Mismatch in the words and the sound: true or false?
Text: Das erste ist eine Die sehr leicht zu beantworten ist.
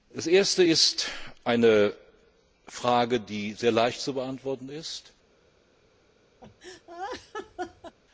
true